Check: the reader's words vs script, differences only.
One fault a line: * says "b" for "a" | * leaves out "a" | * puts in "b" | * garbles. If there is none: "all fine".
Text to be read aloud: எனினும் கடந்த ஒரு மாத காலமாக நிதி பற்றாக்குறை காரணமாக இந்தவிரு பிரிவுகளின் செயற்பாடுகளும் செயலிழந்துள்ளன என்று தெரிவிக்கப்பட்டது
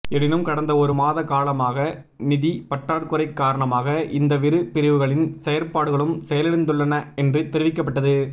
all fine